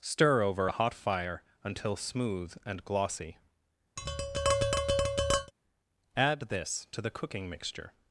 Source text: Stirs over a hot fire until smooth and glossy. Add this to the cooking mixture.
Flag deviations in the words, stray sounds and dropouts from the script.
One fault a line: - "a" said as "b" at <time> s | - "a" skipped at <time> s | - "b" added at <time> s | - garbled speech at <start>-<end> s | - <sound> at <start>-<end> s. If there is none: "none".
- "Stirs" said as "Stir" at 0.0 s
- tap at 4.0-5.5 s